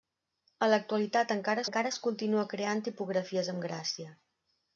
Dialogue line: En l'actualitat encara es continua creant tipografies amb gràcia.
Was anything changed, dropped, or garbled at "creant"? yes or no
no